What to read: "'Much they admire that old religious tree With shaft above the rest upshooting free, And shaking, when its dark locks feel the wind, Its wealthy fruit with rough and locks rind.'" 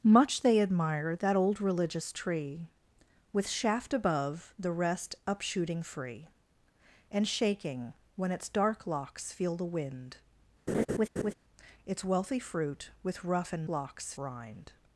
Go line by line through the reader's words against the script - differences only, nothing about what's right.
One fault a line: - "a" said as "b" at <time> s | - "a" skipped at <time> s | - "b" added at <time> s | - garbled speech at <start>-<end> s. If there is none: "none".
none